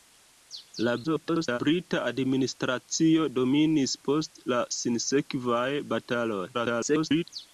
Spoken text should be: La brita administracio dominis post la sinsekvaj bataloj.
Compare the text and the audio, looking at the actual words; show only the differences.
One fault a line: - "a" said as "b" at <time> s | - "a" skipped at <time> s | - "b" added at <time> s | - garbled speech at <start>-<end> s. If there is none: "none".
- garbled speech at 1.0-1.6 s
- garbled speech at 6.5-7.2 s